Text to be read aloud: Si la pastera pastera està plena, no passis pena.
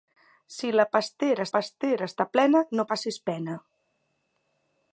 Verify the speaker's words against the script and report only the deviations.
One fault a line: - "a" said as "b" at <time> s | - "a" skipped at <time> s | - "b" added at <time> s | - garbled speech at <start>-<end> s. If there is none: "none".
none